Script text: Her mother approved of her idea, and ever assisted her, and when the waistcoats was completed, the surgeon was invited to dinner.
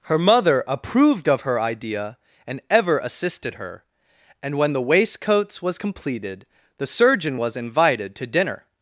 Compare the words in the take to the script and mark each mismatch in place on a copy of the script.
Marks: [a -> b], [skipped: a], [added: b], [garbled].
Her mother approved of her idea, and ever assisted her, and when the waistcoats was completed, the surgeon was invited to dinner.